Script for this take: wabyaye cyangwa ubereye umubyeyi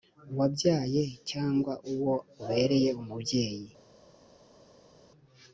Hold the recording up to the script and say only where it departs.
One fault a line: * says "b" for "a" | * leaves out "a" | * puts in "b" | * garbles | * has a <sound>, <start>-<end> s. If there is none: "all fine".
* puts in "uwo"